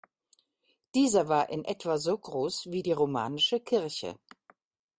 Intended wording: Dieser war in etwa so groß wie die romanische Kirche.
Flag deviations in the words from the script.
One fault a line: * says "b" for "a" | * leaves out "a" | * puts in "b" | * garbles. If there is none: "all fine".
all fine